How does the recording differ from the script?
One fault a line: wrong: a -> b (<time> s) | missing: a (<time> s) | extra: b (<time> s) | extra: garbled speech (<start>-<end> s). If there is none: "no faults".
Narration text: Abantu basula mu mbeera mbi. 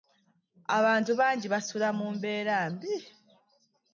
extra: bangi (1.2 s)